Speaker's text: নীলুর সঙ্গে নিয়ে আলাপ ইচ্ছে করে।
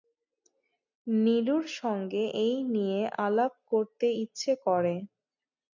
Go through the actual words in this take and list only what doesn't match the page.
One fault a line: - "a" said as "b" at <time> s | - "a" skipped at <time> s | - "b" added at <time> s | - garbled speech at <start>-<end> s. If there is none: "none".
- "এই" added at 2.4 s
- "করতে" added at 3.7 s